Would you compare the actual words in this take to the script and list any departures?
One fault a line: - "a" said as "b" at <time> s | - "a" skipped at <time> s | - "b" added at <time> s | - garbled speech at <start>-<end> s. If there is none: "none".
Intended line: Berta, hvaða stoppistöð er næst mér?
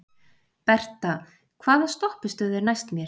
none